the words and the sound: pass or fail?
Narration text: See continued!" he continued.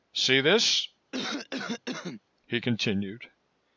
fail